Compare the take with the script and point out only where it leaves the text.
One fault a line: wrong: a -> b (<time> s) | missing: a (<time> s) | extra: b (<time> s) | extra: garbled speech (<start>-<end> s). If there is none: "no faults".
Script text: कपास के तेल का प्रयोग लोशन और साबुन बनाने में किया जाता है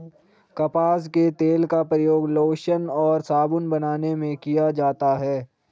no faults